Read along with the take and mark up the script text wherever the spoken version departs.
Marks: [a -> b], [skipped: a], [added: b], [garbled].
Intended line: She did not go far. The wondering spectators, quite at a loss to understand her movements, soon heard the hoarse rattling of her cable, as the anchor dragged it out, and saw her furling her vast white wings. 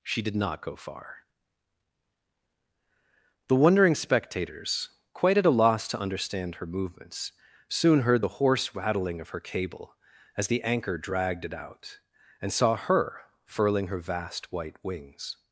She did not go far. The wondering spectators, quite at a loss to understand her movements, soon heard the hoarse rattling of her cable, as the anchor dragged it out, and saw her furling her vast white wings.